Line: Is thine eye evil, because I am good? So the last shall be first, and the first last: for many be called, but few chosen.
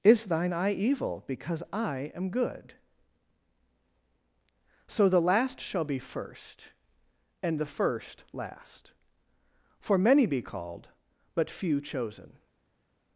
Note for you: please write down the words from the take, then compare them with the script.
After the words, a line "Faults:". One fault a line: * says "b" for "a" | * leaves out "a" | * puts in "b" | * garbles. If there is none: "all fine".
Is thine eye evil, because I am good? So the last shall be first, and the first last: for many be called, but few chosen.
Faults:
all fine